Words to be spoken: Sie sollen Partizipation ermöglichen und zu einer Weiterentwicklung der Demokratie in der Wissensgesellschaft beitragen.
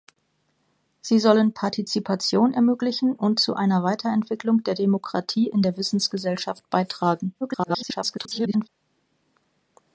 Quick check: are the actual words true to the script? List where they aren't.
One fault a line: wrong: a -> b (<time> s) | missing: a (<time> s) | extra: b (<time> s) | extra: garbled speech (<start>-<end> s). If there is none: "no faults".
extra: garbled speech (7.4-8.7 s)